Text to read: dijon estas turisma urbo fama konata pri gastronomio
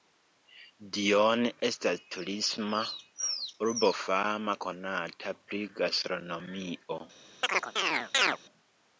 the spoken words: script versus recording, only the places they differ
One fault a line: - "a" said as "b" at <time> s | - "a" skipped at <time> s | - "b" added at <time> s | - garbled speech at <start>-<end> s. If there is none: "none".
none